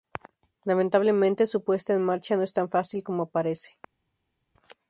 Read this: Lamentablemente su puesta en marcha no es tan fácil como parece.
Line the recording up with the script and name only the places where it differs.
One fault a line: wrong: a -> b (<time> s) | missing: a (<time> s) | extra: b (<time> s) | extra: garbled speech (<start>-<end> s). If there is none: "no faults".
no faults